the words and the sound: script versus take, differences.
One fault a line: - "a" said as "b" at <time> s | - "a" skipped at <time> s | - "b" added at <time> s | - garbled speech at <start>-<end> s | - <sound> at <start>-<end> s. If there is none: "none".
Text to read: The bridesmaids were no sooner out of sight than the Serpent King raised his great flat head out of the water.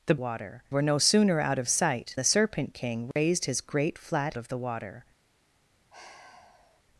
- "bridesmaids" said as "water" at 0.2 s
- "than" skipped at 2.2 s
- dropout at 3.1-3.2 s
- "head out" skipped at 4.3 s
- sigh at 5.9-6.8 s